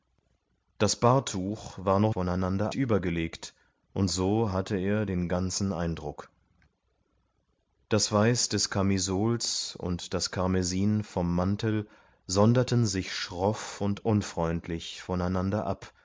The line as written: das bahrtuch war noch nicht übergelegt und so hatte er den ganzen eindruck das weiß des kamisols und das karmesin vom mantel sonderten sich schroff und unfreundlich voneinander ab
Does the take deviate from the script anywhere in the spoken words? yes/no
yes